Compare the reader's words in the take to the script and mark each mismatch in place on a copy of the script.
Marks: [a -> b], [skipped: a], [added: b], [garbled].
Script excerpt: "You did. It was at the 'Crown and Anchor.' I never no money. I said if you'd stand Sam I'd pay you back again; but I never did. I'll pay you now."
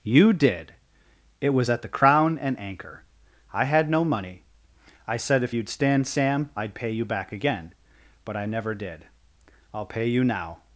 "You did. It was at the 'Crown and Anchor.' I [never -> had] no money. I said if you'd stand Sam I'd pay you back again; but I never did. I'll pay you now."